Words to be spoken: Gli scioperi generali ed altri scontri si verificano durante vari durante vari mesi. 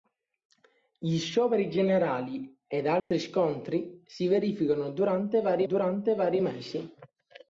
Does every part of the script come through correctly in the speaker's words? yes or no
yes